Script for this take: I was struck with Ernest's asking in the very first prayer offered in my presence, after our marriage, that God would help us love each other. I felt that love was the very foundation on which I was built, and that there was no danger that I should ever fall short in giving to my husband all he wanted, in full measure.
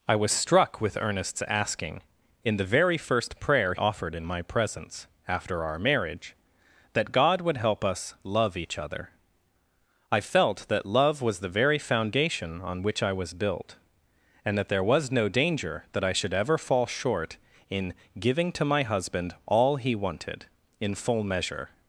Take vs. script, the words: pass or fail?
pass